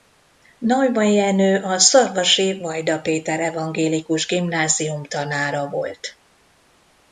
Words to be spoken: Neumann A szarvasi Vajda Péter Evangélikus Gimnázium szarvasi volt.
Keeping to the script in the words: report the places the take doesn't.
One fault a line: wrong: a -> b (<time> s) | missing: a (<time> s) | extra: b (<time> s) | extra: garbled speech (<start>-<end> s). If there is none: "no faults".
extra: Jenő (1.1 s)
wrong: szarvasi -> tanára (5.0 s)